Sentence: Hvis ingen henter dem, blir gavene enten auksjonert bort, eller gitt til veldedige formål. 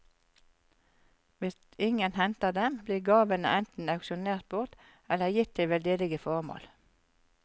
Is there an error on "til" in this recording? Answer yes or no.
no